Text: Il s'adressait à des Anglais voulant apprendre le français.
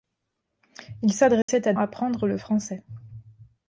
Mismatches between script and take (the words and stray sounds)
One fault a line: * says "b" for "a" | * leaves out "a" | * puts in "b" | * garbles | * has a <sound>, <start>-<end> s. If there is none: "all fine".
* has a dropout, 1.4-1.5 s
* leaves out "des Anglais voulant"